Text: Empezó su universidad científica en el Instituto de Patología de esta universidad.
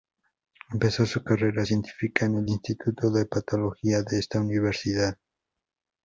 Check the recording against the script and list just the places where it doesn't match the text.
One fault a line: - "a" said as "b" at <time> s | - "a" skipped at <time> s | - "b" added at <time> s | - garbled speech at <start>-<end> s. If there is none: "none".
- "universidad" said as "carrera" at 1.2 s